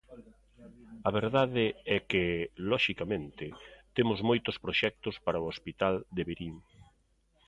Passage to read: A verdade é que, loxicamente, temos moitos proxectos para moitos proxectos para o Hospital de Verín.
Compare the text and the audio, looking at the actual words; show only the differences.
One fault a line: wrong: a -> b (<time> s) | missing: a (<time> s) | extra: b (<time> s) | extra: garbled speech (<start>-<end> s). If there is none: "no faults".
missing: moitos proxectos para (5.4 s)